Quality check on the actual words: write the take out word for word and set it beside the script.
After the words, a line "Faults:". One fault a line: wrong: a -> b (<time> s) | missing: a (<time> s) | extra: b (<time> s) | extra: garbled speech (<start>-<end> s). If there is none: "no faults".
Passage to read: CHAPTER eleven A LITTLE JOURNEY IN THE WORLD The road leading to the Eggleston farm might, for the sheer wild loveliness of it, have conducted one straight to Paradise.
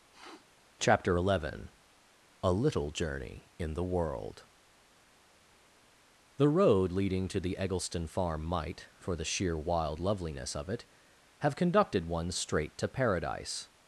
CHAPTER eleven A LITTLE JOURNEY IN THE WORLD The road leading to the Eggleston farm might, for the sheer wild loveliness of it, have conducted one straight to Paradise.
Faults:
no faults